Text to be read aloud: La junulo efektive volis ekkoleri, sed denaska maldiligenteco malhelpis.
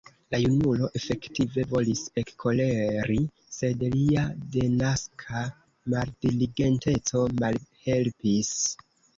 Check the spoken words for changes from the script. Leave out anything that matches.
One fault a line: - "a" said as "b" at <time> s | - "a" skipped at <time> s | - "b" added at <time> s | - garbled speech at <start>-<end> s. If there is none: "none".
- "lia" added at 4.0 s